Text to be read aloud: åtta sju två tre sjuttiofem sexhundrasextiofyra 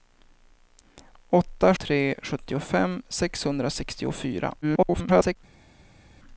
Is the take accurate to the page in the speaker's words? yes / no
no